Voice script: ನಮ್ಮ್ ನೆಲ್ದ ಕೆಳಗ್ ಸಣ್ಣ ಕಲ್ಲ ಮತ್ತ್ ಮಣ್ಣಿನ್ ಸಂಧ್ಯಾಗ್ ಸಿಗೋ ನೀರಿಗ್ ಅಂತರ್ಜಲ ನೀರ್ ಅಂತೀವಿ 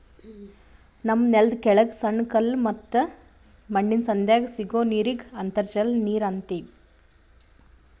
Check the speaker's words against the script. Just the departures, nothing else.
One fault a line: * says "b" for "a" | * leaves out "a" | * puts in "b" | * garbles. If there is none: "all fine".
all fine